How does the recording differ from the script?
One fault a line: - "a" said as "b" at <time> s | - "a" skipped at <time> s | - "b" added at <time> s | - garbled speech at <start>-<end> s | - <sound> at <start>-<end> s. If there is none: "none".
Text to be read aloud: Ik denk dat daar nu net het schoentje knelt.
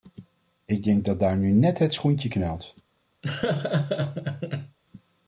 - laugh at 3.2-4.8 s